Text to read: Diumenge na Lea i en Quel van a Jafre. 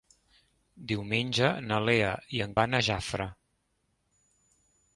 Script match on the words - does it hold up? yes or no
no